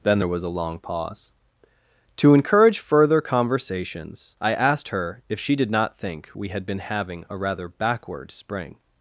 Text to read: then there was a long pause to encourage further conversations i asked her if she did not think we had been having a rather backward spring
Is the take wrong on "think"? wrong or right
right